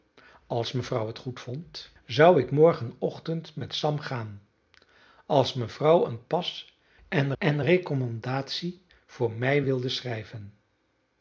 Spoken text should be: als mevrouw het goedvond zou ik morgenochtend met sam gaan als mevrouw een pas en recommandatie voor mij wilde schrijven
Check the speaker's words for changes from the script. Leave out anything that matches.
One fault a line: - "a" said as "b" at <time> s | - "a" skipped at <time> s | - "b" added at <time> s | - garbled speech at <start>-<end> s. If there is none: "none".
- "en" added at 7.4 s